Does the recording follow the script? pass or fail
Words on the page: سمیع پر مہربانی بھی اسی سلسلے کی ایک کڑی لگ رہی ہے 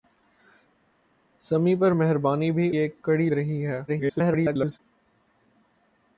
fail